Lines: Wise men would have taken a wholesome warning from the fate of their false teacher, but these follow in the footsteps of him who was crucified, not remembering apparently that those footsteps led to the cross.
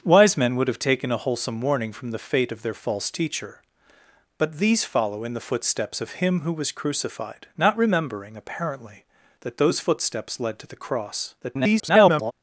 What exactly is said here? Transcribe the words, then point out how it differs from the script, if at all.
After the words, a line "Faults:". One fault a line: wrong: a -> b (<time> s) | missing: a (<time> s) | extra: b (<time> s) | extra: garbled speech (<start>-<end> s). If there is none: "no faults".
Wise men would have taken a wholesome warning from the fate of their false teacher, but these follow in the footsteps of him who was crucified, not remembering apparently that those footsteps led to the cross. [garbled]
Faults:
extra: garbled speech (11.4-12.3 s)